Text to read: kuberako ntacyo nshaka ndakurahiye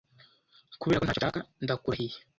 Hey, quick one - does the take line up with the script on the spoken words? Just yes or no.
yes